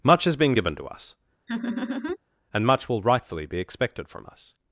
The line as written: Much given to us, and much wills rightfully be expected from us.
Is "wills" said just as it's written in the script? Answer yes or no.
no